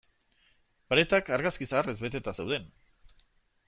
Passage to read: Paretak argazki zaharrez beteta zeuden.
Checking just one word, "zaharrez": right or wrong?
right